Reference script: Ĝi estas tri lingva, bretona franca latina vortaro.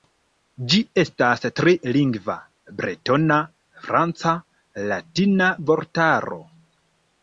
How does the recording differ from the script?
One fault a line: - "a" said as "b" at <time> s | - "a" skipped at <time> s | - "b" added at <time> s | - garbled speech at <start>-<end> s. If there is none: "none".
none